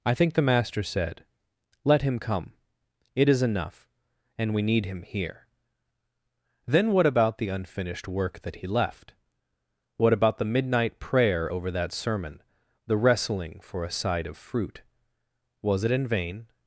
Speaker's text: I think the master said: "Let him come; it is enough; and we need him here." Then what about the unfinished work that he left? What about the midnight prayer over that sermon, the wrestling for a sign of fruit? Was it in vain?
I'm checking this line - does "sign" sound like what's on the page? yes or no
no